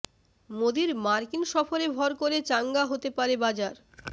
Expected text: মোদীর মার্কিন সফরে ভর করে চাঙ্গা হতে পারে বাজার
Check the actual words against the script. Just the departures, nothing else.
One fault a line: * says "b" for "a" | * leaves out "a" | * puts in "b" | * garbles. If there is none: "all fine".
all fine